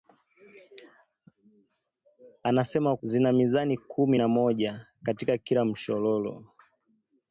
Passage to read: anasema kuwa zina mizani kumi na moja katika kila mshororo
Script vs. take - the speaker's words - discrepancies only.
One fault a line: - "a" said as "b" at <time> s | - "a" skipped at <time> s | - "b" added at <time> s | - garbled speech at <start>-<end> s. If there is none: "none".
- "kuwa" skipped at 3.0 s